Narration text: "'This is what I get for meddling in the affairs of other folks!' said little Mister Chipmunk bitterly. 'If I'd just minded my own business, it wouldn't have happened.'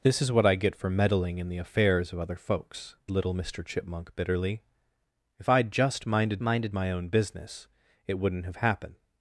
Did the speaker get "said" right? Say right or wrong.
wrong